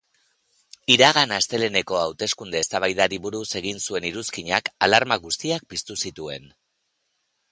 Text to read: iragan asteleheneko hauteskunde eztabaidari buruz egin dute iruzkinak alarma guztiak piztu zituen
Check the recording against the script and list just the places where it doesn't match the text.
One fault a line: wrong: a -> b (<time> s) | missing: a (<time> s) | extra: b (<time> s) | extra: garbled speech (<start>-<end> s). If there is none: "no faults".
wrong: dute -> zuen (3.9 s)